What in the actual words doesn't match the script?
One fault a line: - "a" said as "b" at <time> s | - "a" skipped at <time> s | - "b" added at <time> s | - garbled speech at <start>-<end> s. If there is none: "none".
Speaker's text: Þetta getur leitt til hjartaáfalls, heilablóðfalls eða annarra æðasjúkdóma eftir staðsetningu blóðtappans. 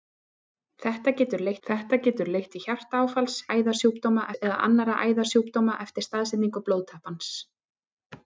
- "þetta getur leitt" added at 1.7 s
- "heilablóðfalls" said as "æðasjúkdóma" at 3.5 s